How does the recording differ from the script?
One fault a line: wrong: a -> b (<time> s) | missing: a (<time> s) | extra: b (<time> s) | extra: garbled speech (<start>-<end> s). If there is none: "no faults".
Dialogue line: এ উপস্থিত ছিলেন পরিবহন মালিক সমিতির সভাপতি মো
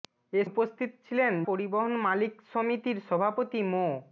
no faults